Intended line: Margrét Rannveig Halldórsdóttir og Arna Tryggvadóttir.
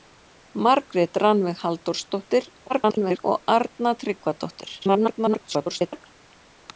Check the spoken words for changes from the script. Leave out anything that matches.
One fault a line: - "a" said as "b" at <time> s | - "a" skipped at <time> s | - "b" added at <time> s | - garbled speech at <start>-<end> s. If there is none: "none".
- garbled speech at 2.7-3.2 s
- garbled speech at 4.8-6.1 s